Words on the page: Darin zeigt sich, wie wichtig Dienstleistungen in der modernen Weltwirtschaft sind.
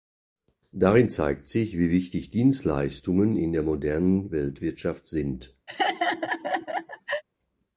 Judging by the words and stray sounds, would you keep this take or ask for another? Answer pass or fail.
fail